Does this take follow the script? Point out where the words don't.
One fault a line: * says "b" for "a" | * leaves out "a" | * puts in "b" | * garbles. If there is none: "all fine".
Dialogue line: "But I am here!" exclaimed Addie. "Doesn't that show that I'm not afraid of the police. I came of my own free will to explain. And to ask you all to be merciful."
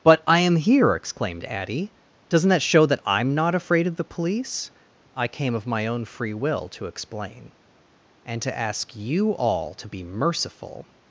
all fine